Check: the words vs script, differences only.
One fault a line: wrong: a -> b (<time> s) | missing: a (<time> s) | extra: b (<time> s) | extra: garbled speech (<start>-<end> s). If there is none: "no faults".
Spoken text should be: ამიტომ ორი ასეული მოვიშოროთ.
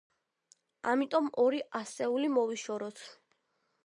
no faults